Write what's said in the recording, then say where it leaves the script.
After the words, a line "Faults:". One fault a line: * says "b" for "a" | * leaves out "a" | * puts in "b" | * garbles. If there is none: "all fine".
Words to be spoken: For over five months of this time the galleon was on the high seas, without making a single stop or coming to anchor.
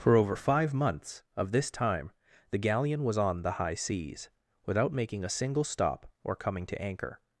For over five months of this time the galleon was on the high seas, without making a single stop or coming to anchor.
Faults:
all fine